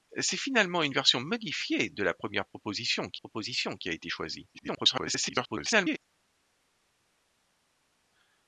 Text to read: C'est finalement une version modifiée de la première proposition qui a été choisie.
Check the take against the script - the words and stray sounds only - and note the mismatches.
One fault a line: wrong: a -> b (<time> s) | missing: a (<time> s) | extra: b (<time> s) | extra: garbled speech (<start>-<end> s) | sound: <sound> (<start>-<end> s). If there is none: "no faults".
extra: proposition qui (3.2 s)
extra: garbled speech (4.5-6.0 s)